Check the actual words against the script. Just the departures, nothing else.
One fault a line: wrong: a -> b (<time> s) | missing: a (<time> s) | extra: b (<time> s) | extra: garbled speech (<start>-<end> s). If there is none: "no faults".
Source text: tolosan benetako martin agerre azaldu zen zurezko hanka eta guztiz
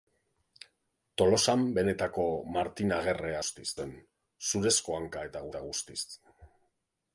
wrong: azaldu -> guztiz (3.4 s)
extra: eta (5.5 s)